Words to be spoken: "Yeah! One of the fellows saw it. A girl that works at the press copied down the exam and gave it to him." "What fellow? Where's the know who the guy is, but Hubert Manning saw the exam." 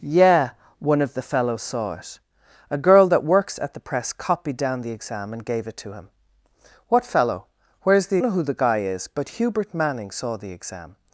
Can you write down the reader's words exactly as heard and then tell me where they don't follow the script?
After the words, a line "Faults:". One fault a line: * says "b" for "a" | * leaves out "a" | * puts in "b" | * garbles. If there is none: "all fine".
"Yeah! One of the fellows saw it. A girl that works at the press copied down the exam and gave it to him." "What fellow? Where's the know who the guy is, but Hubert Manning saw the exam."
Faults:
all fine